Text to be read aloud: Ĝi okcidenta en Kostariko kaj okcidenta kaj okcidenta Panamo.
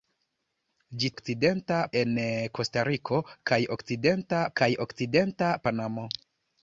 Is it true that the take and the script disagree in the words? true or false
false